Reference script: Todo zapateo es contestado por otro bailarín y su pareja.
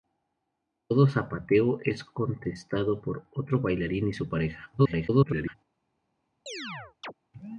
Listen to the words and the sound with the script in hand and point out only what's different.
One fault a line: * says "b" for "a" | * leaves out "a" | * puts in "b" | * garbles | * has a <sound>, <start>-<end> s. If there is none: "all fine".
* garbles
* has a chirp, 6.5-7.1 s